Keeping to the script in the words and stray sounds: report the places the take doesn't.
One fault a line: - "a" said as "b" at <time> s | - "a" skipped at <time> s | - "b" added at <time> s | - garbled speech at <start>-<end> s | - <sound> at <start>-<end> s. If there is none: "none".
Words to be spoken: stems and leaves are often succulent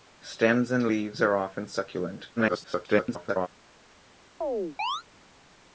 - garbled speech at 2.4-3.5 s
- chirp at 4.4-5.0 s